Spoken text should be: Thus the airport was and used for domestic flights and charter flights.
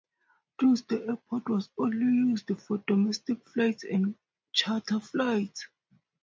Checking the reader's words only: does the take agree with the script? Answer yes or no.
no